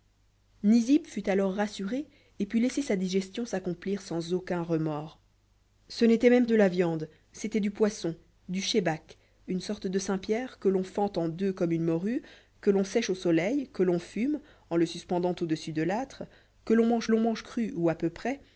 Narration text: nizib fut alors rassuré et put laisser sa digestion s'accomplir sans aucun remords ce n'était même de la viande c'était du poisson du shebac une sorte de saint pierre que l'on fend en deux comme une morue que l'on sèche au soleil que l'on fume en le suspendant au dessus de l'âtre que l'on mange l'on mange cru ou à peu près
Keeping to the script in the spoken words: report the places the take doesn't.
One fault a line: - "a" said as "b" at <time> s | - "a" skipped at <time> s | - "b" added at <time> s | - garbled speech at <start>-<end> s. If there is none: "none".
none